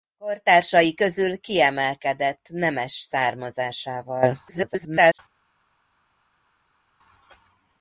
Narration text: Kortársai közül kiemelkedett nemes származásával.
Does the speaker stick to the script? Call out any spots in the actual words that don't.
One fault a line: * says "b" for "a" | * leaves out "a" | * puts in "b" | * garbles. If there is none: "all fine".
* garbles